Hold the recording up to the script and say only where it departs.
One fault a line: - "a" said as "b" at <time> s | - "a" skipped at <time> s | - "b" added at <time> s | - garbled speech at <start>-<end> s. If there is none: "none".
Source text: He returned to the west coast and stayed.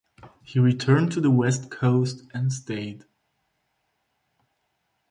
none